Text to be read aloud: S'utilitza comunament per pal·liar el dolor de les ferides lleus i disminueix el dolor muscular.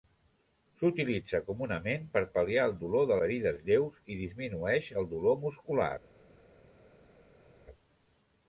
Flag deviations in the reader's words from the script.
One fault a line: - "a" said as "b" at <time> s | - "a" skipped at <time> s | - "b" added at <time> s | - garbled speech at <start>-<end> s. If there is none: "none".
- "les" skipped at 3.2 s